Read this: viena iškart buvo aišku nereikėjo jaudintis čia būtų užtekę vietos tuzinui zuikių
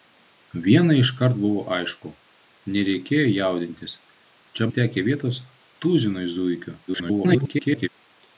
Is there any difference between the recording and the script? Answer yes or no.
yes